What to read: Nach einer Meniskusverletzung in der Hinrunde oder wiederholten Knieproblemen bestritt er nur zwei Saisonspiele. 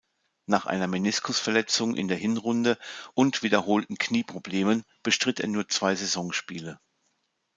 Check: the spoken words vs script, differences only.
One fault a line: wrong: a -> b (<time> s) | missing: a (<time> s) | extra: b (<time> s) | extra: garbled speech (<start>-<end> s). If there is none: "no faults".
wrong: oder -> und (3.1 s)